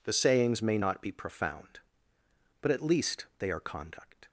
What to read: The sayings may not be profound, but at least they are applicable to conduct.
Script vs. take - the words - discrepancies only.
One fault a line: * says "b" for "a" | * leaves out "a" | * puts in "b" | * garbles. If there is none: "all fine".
* leaves out "applicable to"